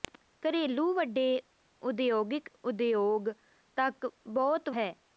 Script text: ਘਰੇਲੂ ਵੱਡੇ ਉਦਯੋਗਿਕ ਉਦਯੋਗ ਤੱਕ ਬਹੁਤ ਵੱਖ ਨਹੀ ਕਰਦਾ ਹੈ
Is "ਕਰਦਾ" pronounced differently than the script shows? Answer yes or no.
yes